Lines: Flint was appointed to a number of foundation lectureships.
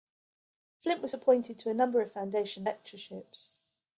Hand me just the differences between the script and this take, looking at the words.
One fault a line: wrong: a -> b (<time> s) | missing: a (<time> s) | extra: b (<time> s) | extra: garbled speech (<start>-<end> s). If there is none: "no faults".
no faults